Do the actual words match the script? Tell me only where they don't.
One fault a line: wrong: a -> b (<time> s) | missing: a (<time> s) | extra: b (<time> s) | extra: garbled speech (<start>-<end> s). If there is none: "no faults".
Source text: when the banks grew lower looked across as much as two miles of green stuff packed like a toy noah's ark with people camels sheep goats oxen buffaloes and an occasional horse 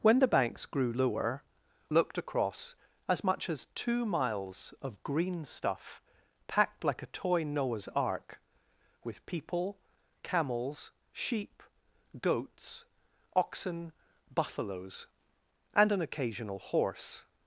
no faults